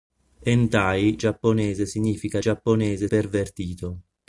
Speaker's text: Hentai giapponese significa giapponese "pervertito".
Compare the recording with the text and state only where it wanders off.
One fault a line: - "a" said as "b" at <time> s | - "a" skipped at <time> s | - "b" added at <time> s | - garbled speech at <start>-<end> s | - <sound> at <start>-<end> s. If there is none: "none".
none